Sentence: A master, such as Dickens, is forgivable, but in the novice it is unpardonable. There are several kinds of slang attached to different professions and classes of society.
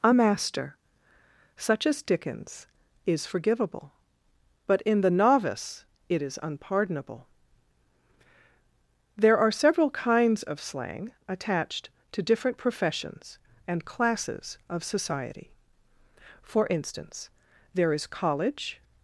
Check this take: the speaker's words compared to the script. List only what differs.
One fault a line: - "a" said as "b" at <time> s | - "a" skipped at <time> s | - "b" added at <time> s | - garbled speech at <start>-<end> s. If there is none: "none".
- "For instance there is college" added at 16.4 s